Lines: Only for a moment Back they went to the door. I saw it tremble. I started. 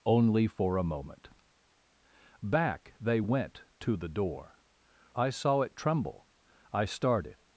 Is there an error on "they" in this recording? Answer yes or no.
no